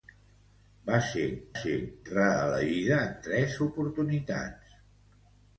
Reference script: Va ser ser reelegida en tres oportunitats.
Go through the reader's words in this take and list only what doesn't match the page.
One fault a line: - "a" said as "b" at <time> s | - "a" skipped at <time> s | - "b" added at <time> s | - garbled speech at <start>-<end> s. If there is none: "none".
none